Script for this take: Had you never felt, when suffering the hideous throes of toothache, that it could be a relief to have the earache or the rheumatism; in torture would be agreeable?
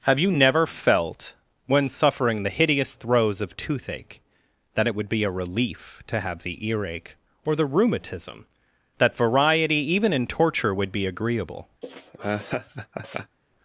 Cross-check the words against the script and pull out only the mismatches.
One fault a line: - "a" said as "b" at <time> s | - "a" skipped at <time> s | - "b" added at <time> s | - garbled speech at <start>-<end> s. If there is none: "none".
- "Had" said as "Have" at 0.1 s
- "could" said as "would" at 5.0 s
- "that variety even" added at 9.0 s